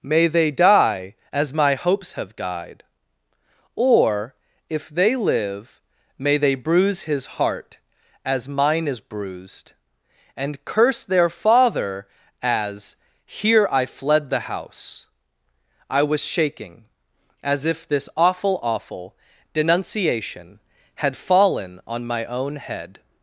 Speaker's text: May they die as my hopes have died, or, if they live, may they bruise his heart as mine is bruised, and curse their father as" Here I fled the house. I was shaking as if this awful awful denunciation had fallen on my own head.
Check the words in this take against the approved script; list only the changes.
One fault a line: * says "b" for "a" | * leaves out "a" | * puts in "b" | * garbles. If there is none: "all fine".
all fine